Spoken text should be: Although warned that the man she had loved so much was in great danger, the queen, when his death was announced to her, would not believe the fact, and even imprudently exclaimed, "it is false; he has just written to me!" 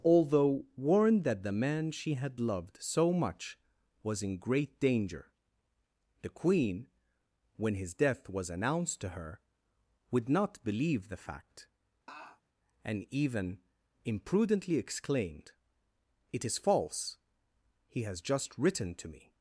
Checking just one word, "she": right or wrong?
right